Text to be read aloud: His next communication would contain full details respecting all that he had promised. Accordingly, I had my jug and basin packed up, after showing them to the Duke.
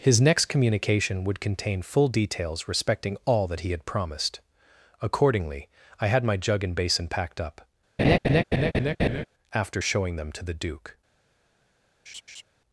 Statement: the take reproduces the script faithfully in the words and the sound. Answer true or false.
false